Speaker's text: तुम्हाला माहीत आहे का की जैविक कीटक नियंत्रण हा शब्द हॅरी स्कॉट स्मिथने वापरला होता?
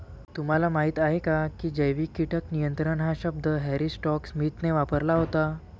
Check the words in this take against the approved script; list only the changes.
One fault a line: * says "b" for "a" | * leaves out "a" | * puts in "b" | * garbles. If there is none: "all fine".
all fine